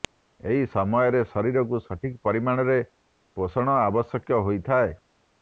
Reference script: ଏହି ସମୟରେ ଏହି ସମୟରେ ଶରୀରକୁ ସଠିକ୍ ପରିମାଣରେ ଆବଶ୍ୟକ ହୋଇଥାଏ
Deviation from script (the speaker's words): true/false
true